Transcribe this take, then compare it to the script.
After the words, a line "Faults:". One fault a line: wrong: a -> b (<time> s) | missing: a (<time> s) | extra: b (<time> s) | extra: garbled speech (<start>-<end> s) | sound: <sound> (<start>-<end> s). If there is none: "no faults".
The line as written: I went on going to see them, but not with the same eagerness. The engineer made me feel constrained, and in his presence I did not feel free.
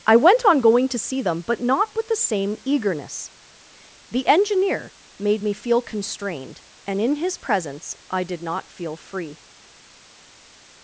I went on going to see them, but not with the same eagerness. The engineer made me feel constrained, and in his presence I did not feel free.
Faults:
no faults